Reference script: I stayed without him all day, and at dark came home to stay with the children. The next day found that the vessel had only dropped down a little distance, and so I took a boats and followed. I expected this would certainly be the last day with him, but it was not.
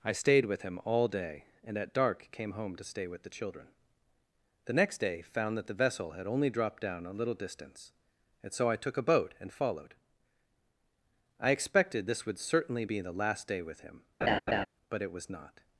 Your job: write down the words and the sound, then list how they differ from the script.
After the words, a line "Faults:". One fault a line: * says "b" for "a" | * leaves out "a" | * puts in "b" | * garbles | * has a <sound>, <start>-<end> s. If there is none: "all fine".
I stayed with him all day, and at dark came home to stay with the children. The next day found that the vessel had only dropped down a little distance, and so I took a boat and followed. I expected this would certainly be the last day with him, but it was not.
Faults:
* says "with" for "without"
* says "boat" for "boats"
* has a laugh, 14.2-14.7 s